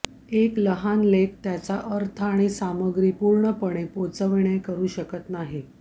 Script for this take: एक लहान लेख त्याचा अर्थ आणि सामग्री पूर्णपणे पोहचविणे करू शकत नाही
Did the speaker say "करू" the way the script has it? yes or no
yes